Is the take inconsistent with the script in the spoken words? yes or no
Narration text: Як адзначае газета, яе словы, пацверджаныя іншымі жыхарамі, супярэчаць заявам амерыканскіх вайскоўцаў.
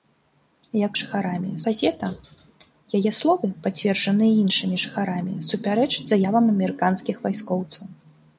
yes